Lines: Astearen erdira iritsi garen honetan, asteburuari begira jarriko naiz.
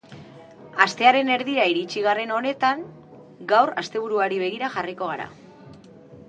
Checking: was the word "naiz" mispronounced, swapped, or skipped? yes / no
yes